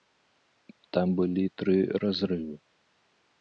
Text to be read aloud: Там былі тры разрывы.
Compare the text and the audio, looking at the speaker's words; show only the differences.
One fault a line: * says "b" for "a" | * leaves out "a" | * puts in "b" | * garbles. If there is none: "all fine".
all fine